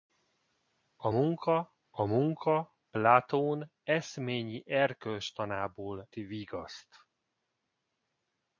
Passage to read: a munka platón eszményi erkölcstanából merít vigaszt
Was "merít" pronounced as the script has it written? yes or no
no